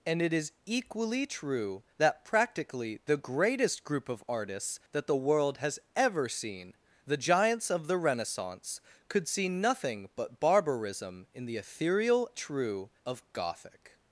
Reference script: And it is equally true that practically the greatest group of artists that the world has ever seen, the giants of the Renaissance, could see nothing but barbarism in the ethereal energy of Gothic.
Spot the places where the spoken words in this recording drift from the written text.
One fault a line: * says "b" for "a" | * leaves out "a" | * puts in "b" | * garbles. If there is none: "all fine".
* says "true" for "energy"